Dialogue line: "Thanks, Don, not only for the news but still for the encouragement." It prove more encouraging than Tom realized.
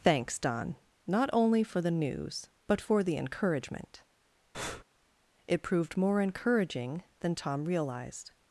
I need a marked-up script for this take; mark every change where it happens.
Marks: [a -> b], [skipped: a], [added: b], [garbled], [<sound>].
"Thanks, Don, not only for the news but [skipped: still] for the encouragement." [breath] It [prove -> proved] more encouraging than Tom realized.